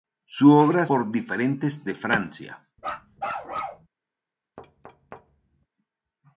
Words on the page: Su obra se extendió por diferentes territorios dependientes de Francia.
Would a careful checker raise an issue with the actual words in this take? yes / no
yes